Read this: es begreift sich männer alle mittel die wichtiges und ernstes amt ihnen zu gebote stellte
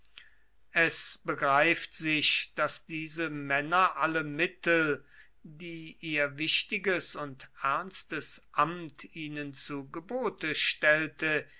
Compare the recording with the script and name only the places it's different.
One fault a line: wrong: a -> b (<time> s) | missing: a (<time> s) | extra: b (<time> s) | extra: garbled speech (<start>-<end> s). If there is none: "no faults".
extra: daß diese (2.5 s)
extra: ihr (6.0 s)